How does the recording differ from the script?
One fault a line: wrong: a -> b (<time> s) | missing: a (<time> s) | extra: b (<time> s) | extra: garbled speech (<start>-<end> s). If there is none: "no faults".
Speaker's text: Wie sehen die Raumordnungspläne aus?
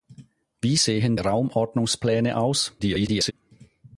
missing: die (1.2 s)
extra: garbled speech (2.8-3.3 s)